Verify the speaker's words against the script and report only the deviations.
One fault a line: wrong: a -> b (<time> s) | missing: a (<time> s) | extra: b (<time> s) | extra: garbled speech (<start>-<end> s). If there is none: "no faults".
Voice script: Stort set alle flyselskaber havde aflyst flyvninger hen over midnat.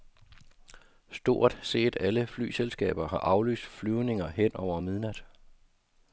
wrong: havde -> har (3.1 s)